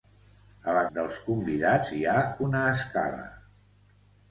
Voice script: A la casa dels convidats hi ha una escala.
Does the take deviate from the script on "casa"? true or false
true